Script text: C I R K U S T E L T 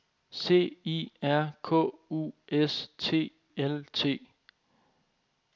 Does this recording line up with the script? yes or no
no